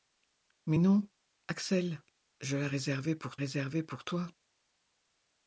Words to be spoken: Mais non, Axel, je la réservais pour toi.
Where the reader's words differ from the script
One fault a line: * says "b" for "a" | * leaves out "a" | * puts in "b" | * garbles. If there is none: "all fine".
* puts in "réservais pour"